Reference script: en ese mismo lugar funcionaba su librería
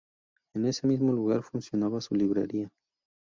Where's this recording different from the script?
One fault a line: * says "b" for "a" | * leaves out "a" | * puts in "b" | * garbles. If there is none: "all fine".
all fine